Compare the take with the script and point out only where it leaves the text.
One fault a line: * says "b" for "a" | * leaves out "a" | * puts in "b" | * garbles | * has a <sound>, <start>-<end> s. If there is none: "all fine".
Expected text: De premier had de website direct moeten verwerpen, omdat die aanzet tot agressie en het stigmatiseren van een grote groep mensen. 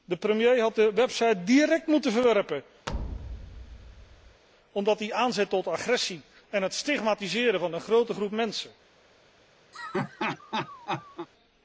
* has a thud, 2.9-4.4 s
* has a laugh, 9.7-11.3 s